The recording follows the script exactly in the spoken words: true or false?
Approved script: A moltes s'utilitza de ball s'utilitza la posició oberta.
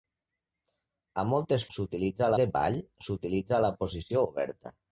true